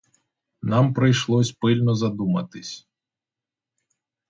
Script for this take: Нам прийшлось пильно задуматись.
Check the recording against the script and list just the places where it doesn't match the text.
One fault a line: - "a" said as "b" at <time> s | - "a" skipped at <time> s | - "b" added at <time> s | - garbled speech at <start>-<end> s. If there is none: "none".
none